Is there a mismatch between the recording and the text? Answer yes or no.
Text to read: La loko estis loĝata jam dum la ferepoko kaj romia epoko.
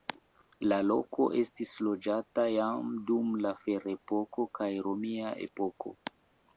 no